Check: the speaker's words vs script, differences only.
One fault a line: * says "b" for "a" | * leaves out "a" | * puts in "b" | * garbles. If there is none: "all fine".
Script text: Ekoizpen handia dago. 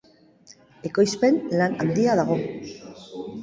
* puts in "lan"